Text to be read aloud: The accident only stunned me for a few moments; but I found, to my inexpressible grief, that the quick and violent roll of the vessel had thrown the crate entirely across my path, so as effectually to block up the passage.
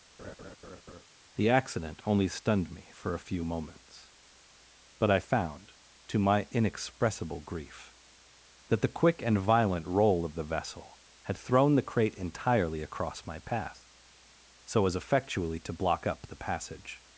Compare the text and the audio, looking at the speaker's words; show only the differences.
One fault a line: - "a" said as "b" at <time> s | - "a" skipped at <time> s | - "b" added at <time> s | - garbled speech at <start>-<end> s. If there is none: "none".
none